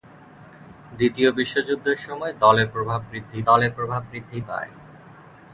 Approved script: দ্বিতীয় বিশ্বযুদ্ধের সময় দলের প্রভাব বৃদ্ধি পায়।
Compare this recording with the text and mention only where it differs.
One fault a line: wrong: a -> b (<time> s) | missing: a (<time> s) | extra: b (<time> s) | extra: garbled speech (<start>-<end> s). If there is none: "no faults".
extra: দলের প্রভাব বৃদ্ধি (3.4 s)